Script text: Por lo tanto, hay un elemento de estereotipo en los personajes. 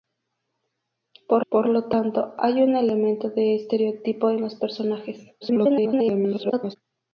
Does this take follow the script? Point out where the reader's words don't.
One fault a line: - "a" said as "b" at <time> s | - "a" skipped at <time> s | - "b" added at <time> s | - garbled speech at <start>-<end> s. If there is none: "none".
- "por" added at 1.5 s
- garbled speech at 5.4-6.8 s